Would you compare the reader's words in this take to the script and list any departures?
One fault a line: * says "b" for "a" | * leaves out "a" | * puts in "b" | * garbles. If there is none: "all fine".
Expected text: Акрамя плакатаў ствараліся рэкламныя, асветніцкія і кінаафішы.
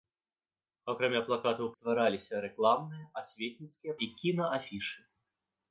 all fine